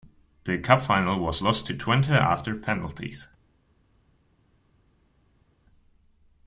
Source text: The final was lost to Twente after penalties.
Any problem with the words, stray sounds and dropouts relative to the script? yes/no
yes